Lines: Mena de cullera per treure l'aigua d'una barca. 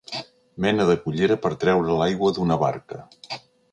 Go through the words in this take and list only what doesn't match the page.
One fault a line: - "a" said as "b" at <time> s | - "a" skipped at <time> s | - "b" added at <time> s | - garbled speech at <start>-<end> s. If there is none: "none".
none